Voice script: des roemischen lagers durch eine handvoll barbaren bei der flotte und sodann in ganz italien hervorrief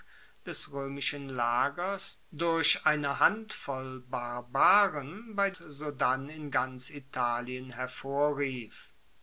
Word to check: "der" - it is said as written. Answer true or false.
false